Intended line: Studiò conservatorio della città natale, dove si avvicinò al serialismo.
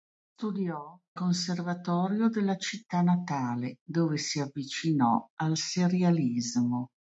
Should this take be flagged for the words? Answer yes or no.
no